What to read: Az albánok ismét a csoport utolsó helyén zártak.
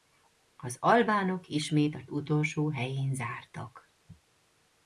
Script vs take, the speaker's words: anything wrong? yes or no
yes